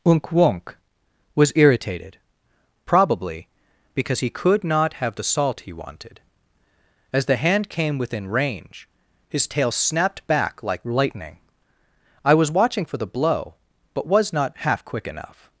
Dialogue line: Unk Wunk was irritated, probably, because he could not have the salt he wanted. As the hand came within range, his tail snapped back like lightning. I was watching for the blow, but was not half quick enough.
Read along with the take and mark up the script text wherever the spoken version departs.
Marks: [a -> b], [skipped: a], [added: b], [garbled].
Unk Wunk was irritated, probably, because he could not have the salt he wanted. As the hand came within range, his tail snapped back like lightning. I was watching for the blow, but was not half quick enough.